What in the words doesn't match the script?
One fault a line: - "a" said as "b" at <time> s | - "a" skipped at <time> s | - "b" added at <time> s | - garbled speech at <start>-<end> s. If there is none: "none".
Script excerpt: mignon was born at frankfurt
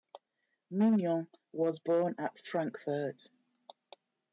none